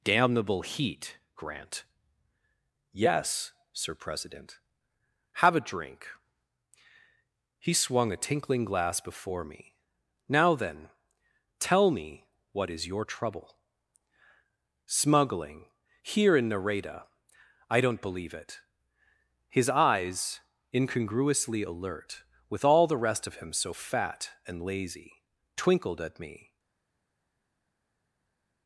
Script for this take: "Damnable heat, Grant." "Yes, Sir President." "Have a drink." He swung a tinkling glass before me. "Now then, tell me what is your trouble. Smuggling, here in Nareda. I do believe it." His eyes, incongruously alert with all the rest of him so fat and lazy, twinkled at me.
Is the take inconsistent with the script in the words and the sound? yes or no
yes